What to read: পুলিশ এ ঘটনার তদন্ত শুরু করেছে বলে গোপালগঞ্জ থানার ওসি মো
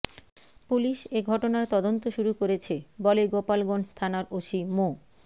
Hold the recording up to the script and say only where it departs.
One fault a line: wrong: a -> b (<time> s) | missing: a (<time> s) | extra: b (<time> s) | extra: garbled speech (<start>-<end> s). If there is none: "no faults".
no faults